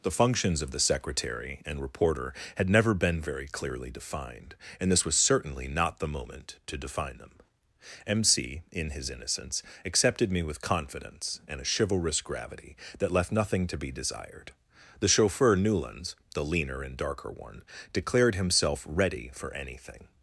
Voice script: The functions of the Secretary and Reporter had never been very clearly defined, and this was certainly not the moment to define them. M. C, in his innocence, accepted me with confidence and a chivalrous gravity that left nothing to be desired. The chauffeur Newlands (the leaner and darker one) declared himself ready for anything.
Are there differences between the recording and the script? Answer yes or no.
no